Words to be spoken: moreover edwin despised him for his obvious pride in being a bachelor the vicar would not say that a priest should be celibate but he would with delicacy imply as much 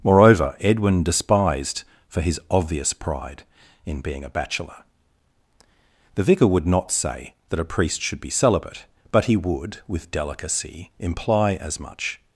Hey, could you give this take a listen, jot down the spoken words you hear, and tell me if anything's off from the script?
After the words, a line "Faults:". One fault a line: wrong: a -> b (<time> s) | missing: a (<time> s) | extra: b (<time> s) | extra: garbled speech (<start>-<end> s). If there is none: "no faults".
moreover edwin despised for his obvious pride in being a bachelor the vicar would not say that a priest should be celibate but he would with delicacy imply as much
Faults:
missing: him (1.8 s)